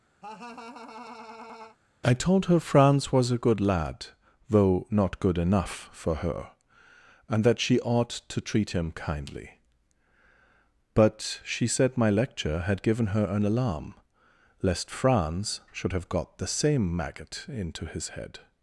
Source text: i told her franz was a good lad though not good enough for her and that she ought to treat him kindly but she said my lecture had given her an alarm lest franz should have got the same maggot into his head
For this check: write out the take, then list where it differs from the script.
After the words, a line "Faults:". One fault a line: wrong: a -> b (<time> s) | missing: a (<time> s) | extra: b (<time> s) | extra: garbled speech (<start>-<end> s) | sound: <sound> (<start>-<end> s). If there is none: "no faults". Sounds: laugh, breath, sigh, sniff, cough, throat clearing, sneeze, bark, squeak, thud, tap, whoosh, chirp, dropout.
i told her franz was a good lad though not good enough for her and that she ought to treat him kindly but she said my lecture had given her an alarm lest franz should have got the same maggot into his head
Faults:
sound: laugh (0.2-1.8 s)